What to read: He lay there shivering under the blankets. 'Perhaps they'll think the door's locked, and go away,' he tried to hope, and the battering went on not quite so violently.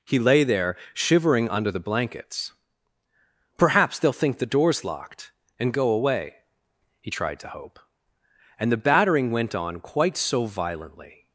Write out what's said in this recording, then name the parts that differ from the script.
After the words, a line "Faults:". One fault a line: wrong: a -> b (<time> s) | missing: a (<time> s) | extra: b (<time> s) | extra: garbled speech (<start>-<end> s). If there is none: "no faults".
He lay there shivering under the blankets. 'Perhaps they'll think the door's locked, and go away,' he tried to hope, and the battering went on quite so violently.
Faults:
missing: not (9.8 s)